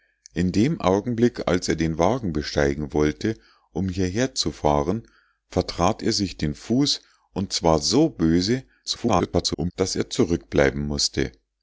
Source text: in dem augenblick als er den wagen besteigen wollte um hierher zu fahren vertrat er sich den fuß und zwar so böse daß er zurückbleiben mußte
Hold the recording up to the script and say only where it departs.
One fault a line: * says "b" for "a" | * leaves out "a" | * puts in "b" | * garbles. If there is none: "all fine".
* garbles